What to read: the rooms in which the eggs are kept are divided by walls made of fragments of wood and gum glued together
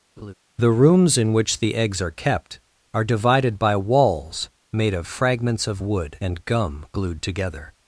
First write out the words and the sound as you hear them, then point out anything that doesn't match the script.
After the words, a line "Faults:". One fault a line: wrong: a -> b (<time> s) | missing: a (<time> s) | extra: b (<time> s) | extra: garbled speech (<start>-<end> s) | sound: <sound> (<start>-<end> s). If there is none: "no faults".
the rooms in which the eggs are kept are divided by walls made of fragments of wood and gum glued together
Faults:
sound: laugh (0.2-0.3 s)